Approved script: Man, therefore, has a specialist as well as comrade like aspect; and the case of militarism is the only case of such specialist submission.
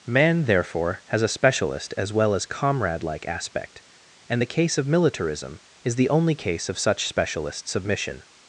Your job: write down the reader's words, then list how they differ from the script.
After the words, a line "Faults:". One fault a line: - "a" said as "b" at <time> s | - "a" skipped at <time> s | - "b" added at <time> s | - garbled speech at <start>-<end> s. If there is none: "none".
Man, therefore, has a specialist as well as comrade like aspect; and the case of militarism is the only case of such specialist submission.
Faults:
none